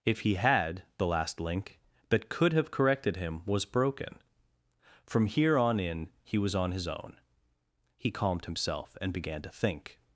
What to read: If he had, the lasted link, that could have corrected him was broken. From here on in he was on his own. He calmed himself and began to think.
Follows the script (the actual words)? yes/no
no